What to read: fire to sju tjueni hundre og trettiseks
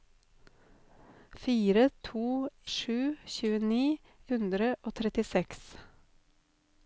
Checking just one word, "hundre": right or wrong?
right